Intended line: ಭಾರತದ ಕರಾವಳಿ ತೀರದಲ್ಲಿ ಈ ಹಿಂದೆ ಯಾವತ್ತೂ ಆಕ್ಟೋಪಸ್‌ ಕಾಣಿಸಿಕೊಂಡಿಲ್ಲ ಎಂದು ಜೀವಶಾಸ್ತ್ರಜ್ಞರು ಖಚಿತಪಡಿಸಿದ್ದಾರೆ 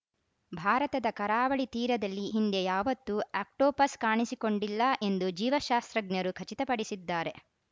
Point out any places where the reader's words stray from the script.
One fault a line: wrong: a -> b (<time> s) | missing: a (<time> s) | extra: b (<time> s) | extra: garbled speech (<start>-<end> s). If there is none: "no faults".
missing: ಈ (2.2 s)